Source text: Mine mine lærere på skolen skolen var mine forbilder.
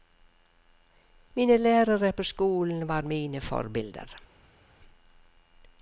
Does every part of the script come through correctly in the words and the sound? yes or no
no